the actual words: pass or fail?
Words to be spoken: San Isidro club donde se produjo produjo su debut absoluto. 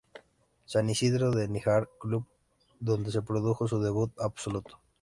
fail